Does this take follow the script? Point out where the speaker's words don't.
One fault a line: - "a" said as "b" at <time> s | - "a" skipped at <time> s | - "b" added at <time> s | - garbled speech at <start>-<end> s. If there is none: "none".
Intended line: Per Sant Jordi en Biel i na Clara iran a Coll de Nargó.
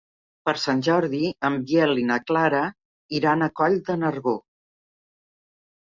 none